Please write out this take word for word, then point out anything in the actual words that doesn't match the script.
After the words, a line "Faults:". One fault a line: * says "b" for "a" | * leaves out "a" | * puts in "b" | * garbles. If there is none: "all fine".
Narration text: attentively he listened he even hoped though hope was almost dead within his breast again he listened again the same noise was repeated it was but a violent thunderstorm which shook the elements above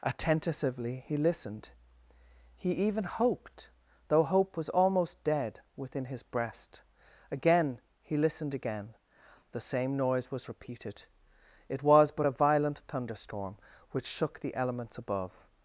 attentively he listened he even hoped though hope was almost dead within his breast again he listened again the same noise was repeated it was but a violent thunderstorm which shook the elements above
Faults:
all fine